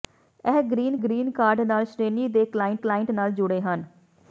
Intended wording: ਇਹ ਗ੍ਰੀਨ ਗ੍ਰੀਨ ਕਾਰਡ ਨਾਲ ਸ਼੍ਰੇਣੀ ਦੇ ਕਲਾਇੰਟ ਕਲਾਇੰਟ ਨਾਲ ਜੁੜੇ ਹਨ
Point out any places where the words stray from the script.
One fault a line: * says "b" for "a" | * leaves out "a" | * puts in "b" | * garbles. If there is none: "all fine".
all fine